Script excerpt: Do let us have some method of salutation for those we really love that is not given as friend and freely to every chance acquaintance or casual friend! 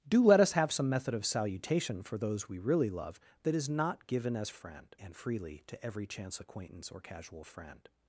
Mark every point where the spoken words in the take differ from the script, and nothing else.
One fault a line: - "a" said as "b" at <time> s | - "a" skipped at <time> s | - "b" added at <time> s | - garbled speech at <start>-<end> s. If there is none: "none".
none